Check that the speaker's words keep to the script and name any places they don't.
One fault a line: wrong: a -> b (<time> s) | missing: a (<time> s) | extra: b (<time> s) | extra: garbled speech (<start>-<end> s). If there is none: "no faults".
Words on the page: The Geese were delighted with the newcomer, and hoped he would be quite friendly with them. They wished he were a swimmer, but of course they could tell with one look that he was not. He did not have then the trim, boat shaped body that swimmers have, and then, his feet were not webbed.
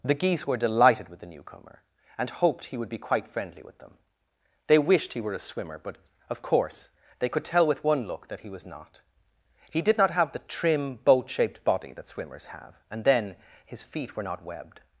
missing: then (10.3 s)